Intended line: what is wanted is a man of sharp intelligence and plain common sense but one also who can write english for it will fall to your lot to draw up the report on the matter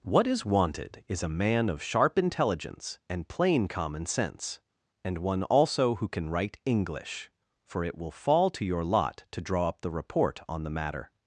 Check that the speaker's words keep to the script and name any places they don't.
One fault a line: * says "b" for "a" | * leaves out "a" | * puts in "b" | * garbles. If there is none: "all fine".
* says "and" for "but"